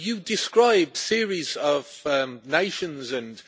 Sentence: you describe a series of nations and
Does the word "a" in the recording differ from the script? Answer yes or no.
yes